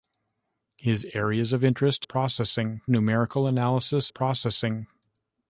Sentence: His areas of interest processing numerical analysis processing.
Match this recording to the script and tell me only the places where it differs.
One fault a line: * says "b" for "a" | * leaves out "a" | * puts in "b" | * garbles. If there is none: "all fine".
all fine